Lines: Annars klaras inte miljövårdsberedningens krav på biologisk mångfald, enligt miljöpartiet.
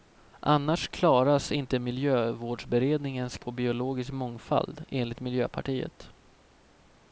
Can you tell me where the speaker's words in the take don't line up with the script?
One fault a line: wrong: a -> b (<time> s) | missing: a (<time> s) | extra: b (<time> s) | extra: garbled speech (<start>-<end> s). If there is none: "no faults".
missing: krav (3.4 s)